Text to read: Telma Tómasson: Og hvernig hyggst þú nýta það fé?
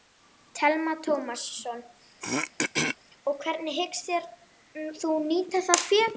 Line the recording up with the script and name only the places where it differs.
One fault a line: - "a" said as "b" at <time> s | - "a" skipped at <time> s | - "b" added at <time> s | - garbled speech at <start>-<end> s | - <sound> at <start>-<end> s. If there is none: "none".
- throat clearing at 2.2-3.0 s